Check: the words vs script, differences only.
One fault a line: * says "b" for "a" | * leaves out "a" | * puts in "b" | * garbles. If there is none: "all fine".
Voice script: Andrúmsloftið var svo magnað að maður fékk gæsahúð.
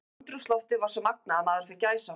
all fine